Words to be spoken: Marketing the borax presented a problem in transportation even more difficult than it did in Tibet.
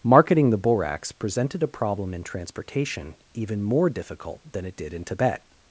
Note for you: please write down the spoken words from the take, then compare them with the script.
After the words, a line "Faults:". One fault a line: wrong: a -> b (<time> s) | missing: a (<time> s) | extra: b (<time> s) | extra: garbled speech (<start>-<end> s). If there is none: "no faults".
Marketing the borax presented a problem in transportation even more difficult than it did in Tibet.
Faults:
no faults